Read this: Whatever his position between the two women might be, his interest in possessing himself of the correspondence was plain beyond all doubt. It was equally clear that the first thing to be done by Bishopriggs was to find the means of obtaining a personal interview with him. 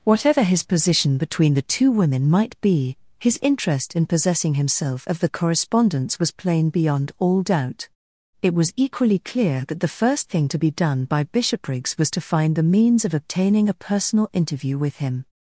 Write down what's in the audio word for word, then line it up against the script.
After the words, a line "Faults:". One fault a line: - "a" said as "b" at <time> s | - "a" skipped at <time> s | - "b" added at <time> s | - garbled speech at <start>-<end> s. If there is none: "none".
Whatever his position between the two women might be, his interest in possessing himself of the correspondence was plain beyond all doubt. It was equally clear that the first thing to be done by Bishopriggs was to find the means of obtaining a personal interview with him.
Faults:
none